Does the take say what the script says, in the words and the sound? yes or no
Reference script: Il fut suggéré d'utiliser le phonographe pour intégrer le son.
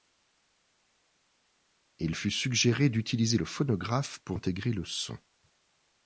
yes